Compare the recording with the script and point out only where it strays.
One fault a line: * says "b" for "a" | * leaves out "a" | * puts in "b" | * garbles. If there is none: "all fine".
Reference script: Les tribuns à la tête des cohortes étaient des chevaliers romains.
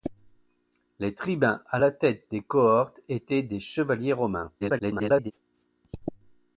* garbles